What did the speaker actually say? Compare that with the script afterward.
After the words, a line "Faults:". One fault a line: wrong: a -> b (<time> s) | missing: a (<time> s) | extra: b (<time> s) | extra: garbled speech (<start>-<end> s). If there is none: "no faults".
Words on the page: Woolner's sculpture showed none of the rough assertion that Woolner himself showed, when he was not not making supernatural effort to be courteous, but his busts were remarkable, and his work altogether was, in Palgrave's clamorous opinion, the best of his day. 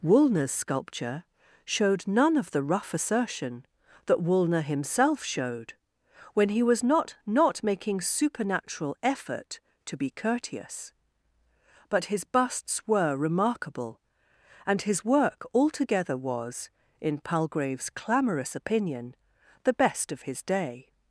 Woolner's sculpture showed none of the rough assertion that Woolner himself showed, when he was not not making supernatural effort to be courteous, but his busts were remarkable, and his work altogether was, in Palgrave's clamorous opinion, the best of his day.
Faults:
no faults